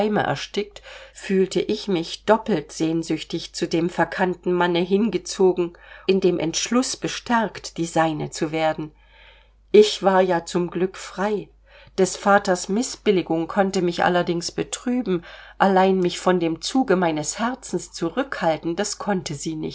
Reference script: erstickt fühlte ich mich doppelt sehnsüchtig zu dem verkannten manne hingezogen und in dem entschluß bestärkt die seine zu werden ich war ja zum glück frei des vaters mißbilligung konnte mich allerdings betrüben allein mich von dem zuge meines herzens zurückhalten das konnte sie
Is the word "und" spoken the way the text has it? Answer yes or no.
no